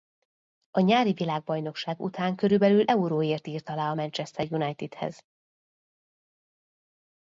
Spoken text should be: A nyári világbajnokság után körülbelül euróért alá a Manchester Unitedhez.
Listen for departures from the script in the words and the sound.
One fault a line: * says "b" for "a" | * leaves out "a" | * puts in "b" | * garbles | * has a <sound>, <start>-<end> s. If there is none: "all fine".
* puts in "írt"